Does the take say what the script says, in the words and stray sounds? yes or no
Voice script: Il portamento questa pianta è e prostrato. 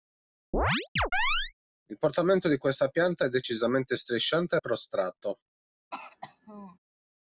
no